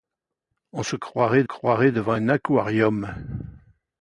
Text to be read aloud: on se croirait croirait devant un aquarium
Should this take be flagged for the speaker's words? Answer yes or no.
no